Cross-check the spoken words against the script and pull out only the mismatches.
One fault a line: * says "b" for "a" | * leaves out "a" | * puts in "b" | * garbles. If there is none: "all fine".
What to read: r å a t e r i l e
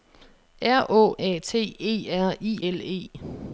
all fine